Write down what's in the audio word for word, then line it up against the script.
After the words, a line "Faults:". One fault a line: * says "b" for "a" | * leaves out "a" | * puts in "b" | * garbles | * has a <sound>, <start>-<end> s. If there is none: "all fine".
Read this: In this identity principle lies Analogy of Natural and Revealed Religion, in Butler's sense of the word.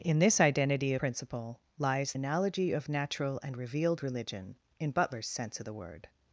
In this identity principle lies Analogy of Natural and Revealed Religion, in Butler's sense of the word.
Faults:
all fine